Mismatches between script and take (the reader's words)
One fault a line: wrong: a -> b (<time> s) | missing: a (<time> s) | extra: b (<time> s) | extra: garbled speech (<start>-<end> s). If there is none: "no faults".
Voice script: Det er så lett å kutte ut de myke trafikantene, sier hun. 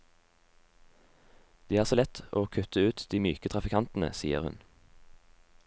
no faults